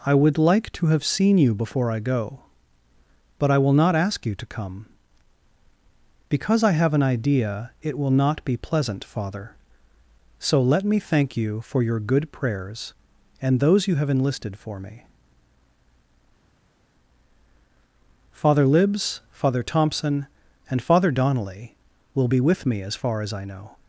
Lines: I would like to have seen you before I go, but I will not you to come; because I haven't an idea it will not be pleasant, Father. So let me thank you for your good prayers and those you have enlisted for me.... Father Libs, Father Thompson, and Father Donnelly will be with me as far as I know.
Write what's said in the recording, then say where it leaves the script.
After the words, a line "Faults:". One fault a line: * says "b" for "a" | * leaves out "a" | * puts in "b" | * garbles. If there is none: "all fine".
I would like to have seen you before I go, but I will not ask you to come; because I have an idea it will not be pleasant, Father. So let me thank you for your good prayers and those you have enlisted for me.... Father Libs, Father Thompson, and Father Donnelly will be with me as far as I know.
Faults:
* puts in "ask"
* says "have" for "haven't"